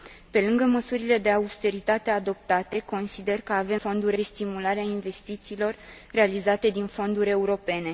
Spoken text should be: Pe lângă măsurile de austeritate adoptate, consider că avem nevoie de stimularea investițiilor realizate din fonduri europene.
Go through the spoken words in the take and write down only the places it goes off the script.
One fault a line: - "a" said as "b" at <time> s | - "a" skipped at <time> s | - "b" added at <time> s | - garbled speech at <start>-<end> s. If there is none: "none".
- "nevoie" said as "fonduri" at 3.7 s